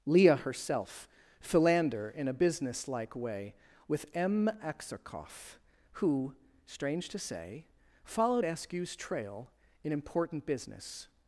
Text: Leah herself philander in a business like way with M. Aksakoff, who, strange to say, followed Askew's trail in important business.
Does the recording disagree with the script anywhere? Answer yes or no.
no